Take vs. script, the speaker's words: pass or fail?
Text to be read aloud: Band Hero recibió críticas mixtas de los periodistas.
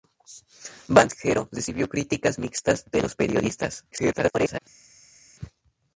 fail